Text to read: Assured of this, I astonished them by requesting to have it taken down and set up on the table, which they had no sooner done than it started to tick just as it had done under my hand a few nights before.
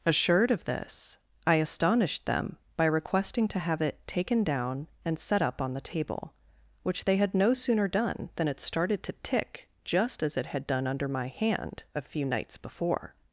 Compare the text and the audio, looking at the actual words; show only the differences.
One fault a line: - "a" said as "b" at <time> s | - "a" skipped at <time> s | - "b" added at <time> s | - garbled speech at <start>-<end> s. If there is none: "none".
none